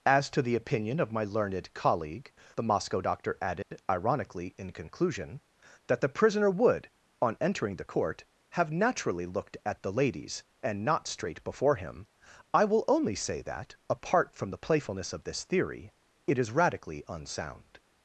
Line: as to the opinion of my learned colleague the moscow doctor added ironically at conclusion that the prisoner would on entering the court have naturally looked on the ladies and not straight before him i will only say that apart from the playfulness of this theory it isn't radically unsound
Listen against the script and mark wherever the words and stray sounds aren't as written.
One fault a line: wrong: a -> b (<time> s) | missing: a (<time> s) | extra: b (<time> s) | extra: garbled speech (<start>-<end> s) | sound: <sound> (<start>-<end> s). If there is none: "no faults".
sound: dropout (3.6-3.7 s)
wrong: at -> in (4.6 s)
wrong: on -> at (9.7 s)
wrong: isn't -> is (16.4 s)